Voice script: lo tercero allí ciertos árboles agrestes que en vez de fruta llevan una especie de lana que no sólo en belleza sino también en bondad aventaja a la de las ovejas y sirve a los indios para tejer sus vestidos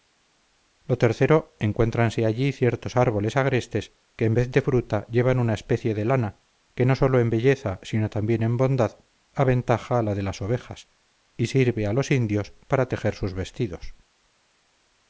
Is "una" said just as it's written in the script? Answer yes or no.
yes